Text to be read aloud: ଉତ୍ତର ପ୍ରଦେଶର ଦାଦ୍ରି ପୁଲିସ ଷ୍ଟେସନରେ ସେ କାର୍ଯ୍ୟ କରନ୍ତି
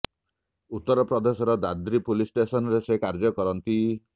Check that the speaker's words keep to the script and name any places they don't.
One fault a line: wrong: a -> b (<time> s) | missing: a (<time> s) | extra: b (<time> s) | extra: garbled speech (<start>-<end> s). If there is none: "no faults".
no faults